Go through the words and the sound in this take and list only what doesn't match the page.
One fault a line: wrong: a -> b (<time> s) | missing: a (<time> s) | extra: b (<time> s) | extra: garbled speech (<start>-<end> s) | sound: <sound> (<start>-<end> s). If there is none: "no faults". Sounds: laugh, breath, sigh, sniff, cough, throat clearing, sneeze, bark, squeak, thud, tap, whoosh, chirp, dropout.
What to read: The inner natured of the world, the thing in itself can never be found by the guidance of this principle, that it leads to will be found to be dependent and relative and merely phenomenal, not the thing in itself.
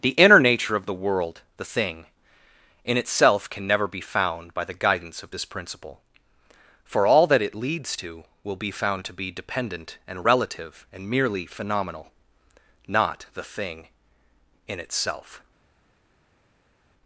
wrong: natured -> nature (0.4 s)
extra: for all (6.9 s)